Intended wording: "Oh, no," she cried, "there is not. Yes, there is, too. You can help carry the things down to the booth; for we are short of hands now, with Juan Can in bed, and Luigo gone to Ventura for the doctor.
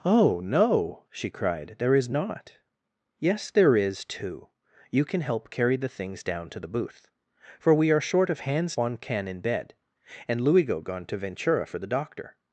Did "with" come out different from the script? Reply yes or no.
yes